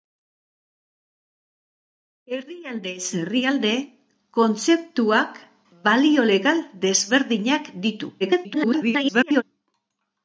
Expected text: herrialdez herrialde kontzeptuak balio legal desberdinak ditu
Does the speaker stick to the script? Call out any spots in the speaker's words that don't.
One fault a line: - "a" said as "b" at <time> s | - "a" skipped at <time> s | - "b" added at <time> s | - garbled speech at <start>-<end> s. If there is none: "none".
- garbled speech at 8.2-9.4 s